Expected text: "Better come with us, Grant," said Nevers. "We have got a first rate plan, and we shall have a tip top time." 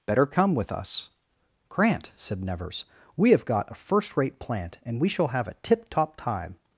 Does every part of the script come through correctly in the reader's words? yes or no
no